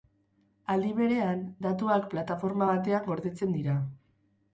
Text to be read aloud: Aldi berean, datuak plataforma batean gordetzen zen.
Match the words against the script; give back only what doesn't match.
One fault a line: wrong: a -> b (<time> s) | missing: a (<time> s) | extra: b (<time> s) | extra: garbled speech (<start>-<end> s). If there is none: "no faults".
wrong: zen -> dira (3.6 s)